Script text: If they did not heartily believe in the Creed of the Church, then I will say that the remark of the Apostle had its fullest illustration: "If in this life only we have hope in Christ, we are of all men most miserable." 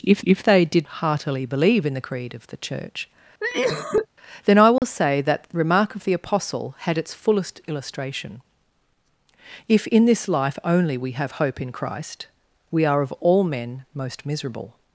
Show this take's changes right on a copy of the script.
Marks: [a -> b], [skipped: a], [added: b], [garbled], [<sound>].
If [added: if] they did [skipped: not] heartily believe in the Creed of the Church, [cough] then I will [dropout] say that the remark of the Apostle had its fullest illustration: "If in this life only we have hope in Christ, we are of all men most miserable."